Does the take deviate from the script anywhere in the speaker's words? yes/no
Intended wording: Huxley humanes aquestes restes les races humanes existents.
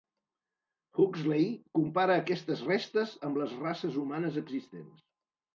yes